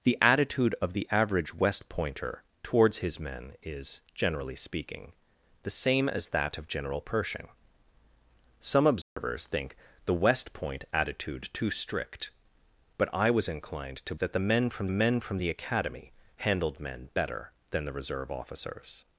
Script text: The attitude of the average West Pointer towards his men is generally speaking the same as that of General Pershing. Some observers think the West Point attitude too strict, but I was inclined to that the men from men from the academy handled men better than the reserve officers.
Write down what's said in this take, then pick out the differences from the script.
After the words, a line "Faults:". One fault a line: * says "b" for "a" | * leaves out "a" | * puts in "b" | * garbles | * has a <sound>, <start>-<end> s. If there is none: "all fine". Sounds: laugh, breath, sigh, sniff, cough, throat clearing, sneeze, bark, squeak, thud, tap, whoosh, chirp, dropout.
The attitude of the average West Pointer towards his men is generally speaking the same as that of General Pershing. Some observers think the West Point attitude too strict, but I was inclined to that the men from men from the academy handled men better than the reserve officers.
Faults:
* has a dropout, 9.0-9.2 s